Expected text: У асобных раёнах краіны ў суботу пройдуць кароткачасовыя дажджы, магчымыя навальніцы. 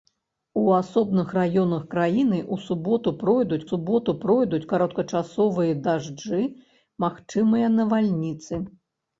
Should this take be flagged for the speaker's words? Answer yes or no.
yes